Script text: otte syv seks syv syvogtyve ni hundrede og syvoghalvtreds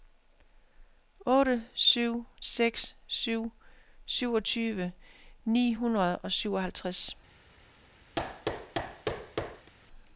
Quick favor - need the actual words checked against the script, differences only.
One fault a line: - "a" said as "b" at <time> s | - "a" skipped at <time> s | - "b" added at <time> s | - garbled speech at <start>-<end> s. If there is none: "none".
none